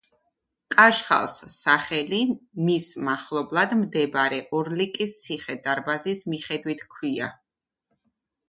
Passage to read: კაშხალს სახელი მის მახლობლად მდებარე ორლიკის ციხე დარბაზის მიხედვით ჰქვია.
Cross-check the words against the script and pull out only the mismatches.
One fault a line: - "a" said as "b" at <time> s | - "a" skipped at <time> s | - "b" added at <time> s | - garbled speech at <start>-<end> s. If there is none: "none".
none